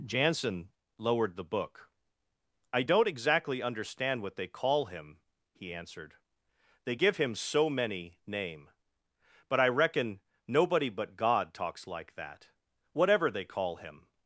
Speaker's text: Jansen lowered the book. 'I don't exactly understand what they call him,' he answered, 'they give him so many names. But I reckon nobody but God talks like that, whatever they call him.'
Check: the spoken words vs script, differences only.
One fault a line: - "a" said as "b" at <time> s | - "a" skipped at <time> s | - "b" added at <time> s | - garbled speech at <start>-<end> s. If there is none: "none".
- "names" said as "name" at 8.3 s